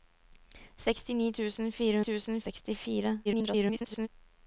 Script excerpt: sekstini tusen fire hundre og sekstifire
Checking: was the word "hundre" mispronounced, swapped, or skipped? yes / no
yes